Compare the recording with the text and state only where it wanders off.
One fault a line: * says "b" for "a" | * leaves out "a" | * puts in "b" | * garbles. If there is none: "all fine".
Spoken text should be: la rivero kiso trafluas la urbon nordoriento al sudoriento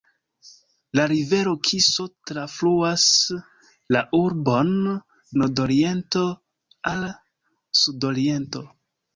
all fine